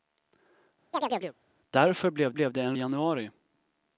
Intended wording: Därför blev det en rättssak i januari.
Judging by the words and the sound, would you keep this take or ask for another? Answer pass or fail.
fail